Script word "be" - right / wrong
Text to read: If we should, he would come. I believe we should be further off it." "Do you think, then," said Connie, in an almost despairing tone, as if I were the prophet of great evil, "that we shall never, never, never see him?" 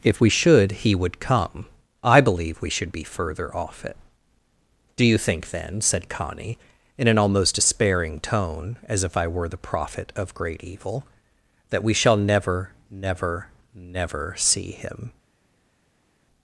right